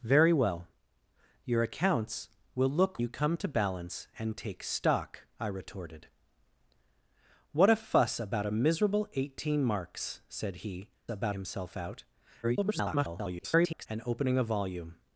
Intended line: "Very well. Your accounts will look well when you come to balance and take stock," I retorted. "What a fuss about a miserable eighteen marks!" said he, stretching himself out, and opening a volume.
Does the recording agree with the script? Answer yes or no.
no